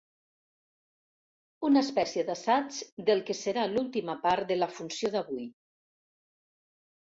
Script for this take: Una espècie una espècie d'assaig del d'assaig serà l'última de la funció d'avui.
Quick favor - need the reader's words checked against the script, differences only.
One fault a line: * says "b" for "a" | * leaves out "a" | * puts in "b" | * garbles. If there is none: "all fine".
* leaves out "una espècie"
* says "que" for "d'assaig"
* puts in "part"